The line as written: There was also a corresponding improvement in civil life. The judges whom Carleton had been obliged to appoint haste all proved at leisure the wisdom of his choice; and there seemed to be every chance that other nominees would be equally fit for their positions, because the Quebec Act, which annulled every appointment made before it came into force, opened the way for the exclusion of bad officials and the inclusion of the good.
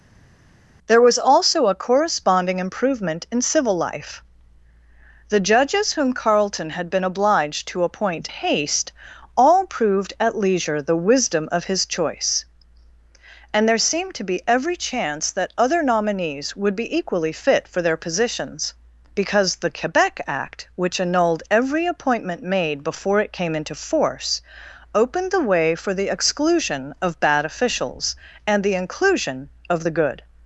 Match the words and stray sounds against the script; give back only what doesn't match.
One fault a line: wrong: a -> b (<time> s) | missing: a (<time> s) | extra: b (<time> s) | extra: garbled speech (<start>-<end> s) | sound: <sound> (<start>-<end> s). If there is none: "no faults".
no faults